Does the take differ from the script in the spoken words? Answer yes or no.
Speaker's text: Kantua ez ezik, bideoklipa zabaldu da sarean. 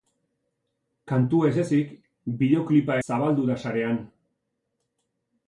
no